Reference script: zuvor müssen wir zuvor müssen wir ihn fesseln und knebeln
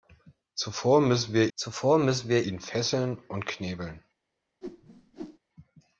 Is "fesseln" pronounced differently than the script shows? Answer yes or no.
no